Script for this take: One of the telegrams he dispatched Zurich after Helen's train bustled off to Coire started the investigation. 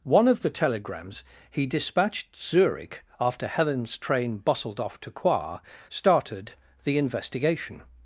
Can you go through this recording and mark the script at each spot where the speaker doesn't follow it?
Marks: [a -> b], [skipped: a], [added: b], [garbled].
One of the telegrams he dispatched Zurich after Helen's train bustled off to Coire started the investigation.